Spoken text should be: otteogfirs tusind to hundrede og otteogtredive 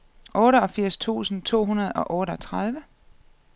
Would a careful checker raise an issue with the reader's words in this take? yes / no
no